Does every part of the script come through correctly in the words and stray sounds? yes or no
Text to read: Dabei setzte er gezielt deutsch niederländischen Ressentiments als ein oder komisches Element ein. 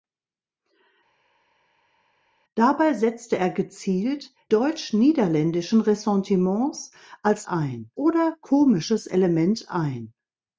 yes